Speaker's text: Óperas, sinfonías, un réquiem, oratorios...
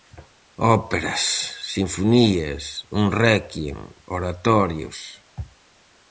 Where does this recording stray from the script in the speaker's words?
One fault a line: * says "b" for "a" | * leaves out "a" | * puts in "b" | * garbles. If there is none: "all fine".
all fine